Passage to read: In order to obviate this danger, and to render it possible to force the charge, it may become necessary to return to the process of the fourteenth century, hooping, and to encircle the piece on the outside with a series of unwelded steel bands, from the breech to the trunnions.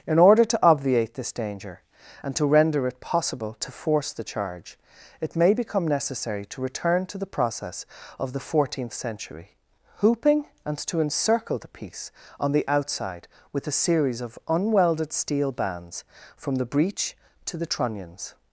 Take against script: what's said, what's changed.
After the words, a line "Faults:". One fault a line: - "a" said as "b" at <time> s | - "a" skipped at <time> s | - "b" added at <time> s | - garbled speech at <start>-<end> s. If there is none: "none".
In order to obviate this danger, and to render it possible to force the charge, it may become necessary to return to the process of the fourteenth century, hooping, and to encircle the piece on the outside with a series of unwelded steel bands, from the breech to the trunnions.
Faults:
none